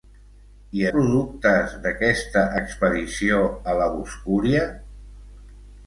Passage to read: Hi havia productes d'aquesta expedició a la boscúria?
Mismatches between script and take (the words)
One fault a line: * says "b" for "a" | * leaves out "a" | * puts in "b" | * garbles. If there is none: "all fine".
* leaves out "havia"